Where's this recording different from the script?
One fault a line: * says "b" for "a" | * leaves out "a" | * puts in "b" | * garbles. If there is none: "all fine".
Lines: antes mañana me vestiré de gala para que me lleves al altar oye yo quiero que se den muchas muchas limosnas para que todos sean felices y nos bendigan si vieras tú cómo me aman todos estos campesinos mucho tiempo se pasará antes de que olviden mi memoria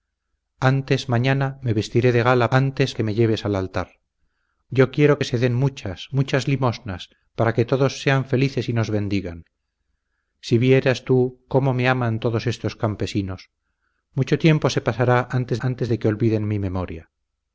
* says "antes" for "para"
* leaves out "oye"
* puts in "antes"